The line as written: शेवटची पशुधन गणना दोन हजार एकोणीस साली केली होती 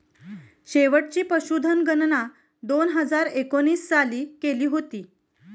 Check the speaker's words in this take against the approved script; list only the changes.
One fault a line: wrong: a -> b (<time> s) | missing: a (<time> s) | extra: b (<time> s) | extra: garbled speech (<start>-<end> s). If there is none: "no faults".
no faults